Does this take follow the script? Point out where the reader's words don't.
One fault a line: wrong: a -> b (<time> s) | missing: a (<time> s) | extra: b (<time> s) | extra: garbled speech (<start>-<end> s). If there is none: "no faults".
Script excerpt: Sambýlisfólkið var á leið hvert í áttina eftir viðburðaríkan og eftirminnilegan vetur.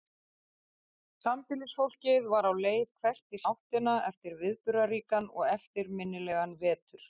no faults